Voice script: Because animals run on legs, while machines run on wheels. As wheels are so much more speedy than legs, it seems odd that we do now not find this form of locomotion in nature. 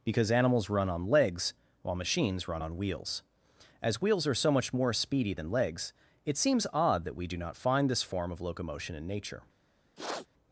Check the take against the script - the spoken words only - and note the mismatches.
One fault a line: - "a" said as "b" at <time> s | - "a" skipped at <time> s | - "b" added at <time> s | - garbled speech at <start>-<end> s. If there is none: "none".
- "now" skipped at 7.4 s